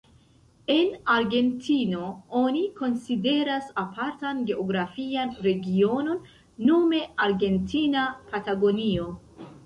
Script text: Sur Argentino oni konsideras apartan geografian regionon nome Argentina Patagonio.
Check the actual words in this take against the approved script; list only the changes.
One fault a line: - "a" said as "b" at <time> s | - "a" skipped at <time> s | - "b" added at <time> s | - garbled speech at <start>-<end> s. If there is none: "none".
- "Sur" said as "En" at 0.8 s